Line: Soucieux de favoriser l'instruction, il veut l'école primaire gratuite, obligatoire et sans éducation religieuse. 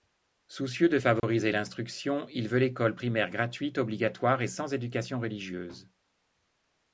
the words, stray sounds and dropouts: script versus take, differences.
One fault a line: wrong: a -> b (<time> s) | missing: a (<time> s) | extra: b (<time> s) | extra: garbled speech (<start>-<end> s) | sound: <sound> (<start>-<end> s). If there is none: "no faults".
sound: dropout (1.2-1.2 s)